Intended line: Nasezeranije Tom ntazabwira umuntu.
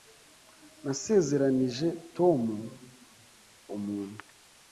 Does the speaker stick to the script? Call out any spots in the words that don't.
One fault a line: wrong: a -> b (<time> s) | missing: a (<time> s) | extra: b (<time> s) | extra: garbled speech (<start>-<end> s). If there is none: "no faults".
missing: ntazabwira (2.4 s)